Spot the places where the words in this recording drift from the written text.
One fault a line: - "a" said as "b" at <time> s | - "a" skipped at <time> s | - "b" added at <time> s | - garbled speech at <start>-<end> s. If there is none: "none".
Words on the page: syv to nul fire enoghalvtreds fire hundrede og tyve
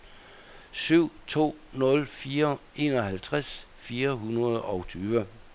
none